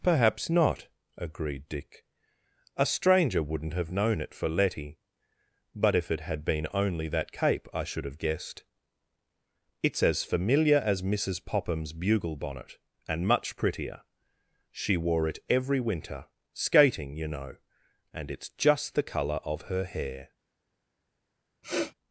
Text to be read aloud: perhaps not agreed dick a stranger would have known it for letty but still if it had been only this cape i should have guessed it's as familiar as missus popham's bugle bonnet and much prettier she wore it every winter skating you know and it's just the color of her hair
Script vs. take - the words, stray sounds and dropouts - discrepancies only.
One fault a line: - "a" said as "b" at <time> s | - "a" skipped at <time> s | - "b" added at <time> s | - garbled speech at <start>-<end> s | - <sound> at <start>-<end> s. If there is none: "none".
- "would" said as "wouldn't" at 3.4 s
- "still" skipped at 6.0 s
- "this" said as "that" at 7.1 s
- sniff at 21.6-21.9 s